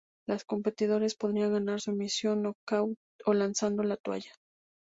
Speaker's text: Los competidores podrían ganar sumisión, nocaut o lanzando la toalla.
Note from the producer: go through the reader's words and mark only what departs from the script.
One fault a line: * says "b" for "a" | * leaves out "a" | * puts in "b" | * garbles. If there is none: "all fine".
all fine